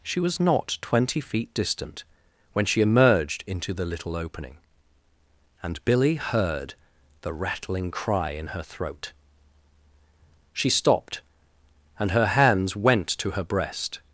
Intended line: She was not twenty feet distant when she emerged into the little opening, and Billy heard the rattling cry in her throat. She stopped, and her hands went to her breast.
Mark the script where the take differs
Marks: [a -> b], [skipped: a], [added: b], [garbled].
She was not twenty feet distant when she emerged into the little opening, and Billy heard the rattling cry in her throat. She stopped, and her hands went to her breast.